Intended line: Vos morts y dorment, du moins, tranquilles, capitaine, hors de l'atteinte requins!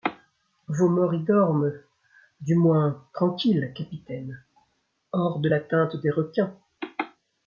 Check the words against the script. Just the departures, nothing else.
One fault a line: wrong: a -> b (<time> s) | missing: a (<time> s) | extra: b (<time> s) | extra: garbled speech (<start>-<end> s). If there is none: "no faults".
extra: des (6.0 s)